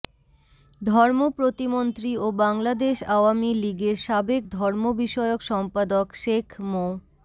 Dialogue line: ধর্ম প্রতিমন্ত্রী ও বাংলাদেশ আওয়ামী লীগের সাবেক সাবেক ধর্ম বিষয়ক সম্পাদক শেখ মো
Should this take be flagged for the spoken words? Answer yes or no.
yes